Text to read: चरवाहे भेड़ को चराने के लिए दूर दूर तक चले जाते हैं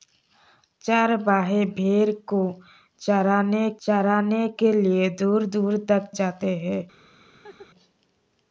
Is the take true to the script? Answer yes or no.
no